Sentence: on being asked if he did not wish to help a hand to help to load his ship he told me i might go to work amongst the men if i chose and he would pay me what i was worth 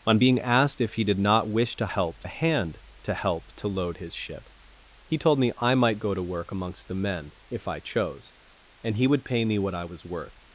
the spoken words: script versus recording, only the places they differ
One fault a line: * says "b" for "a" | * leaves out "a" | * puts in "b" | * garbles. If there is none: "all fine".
all fine